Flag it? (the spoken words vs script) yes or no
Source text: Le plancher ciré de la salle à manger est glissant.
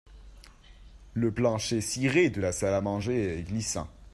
no